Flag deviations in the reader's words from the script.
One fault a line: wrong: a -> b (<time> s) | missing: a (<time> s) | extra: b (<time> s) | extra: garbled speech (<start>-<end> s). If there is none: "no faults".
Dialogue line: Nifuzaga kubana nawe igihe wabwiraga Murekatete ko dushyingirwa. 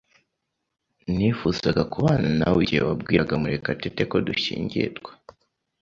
no faults